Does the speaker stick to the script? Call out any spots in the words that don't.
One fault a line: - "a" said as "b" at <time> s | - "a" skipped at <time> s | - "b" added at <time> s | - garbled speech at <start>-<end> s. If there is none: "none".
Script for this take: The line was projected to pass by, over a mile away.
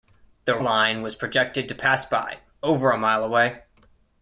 none